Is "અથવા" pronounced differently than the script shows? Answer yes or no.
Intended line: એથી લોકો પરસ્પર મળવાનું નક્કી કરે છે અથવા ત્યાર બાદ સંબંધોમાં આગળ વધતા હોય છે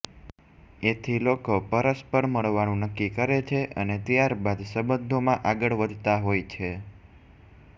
yes